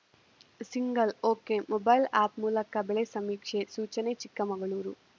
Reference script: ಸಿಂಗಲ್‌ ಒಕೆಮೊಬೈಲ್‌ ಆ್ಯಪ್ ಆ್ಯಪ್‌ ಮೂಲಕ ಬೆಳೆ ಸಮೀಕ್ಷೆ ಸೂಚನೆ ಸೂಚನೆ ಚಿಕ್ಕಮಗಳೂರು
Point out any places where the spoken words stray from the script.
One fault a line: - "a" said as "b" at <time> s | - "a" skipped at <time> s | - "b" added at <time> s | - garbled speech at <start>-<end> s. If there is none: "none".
- "ಆ್ಯಪ್" skipped at 2.4 s
- "ಸೂಚನೆ" skipped at 4.1 s